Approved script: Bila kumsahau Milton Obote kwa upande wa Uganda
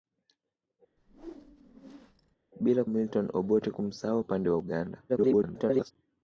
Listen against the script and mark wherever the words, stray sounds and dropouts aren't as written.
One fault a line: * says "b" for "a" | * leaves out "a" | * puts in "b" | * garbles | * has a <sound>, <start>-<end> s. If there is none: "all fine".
* has a whoosh, 1.0-2.4 s
* leaves out "kumsahau"
* says "kumsahau" for "kwa"
* garbles